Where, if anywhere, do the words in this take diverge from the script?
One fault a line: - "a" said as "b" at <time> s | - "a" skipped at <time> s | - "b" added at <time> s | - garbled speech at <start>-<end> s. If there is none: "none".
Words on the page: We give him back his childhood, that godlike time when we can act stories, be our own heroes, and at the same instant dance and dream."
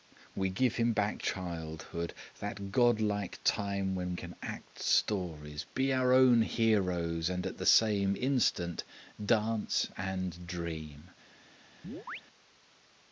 - "his" skipped at 1.2 s
- "we" skipped at 4.1 s